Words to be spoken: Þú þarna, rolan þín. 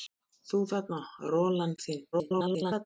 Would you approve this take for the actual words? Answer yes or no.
no